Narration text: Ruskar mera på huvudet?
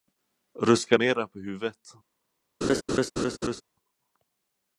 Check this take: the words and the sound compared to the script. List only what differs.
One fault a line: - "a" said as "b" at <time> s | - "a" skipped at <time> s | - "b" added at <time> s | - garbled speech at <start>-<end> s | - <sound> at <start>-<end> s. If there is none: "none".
- laugh at 2.6-3.6 s